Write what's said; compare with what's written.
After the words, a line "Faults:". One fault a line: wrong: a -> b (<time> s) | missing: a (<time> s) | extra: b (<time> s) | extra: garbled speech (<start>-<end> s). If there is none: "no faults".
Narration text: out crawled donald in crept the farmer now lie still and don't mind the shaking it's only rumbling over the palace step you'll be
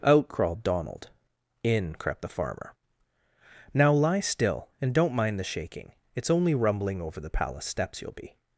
out crawled donald in crept the farmer now lie still and don't mind the shaking it's only rumbling over the palace steps you'll be
Faults:
wrong: step -> steps (7.7 s)